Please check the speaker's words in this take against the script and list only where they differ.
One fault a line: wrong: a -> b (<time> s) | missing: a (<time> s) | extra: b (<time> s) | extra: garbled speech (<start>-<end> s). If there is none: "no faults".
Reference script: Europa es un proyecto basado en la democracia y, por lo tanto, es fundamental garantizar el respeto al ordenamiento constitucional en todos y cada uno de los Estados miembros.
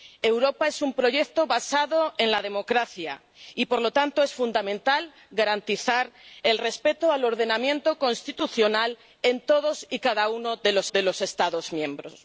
extra: de los (10.9 s)